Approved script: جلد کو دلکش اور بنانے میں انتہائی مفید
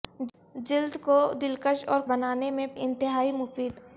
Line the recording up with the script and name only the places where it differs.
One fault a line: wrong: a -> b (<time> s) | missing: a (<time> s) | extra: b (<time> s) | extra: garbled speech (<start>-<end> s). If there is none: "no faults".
no faults